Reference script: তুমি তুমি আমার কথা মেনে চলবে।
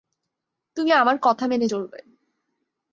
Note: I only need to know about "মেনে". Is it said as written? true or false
true